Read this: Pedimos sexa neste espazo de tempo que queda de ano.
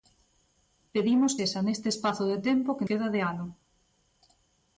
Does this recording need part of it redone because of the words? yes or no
no